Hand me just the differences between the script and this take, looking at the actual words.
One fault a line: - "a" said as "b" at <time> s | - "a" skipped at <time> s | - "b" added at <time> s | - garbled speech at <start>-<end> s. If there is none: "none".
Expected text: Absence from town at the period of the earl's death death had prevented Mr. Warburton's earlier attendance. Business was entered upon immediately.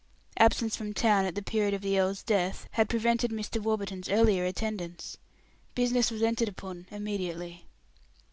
- "death" skipped at 2.7 s